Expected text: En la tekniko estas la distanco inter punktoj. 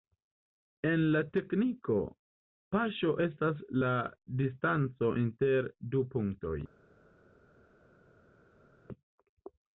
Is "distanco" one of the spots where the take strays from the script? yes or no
no